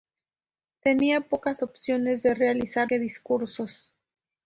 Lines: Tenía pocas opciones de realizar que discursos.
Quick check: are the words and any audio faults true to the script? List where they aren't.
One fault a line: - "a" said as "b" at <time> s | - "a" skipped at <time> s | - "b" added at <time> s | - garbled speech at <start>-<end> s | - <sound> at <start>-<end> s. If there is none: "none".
none